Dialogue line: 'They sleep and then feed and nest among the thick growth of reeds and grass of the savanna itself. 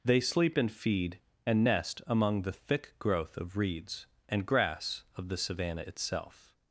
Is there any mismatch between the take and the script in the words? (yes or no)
yes